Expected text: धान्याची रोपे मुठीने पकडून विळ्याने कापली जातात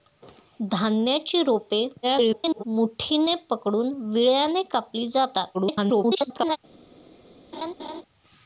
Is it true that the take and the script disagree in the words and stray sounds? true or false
true